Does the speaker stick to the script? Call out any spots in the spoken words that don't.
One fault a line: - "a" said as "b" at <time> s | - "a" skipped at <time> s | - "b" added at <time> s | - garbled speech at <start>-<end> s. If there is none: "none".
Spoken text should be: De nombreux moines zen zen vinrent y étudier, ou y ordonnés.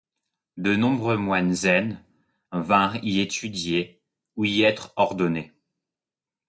- "zen" skipped at 2.0 s
- "être" added at 4.6 s